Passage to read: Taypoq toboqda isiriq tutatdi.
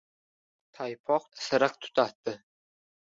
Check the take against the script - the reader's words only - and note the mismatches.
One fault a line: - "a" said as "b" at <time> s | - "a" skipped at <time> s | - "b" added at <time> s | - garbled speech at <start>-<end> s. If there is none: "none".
- "toboqda" skipped at 1.3 s